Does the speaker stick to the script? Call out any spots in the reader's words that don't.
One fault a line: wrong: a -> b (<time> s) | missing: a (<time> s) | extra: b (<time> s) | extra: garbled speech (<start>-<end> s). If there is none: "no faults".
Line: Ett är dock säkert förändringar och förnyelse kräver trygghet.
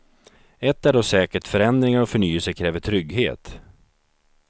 no faults